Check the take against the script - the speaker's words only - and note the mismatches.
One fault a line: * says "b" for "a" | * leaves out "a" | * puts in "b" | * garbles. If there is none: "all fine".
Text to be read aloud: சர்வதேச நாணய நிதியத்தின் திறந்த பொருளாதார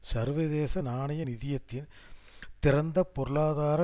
all fine